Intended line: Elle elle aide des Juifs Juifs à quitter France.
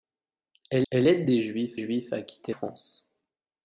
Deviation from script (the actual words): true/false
false